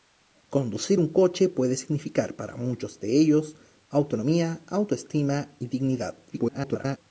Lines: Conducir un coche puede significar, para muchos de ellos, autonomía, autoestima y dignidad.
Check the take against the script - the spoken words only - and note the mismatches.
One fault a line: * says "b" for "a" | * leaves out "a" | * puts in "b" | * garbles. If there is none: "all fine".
* garbles